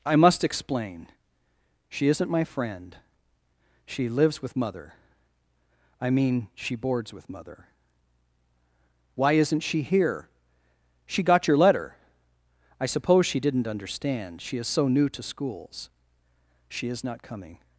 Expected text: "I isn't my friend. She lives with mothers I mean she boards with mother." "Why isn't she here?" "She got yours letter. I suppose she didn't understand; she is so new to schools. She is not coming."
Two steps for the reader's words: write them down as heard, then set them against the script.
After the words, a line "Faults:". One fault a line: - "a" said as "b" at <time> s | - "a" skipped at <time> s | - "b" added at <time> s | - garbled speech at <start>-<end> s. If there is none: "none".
"I must explain. She isn't my friend. She lives with mother I mean she boards with mother." "Why isn't she here?" "She got your letter. I suppose she didn't understand; she is so new to schools. She is not coming."
Faults:
- "must explain She" added at 0.1 s
- "mothers" said as "mother" at 4.5 s
- "yours" said as "your" at 11.5 s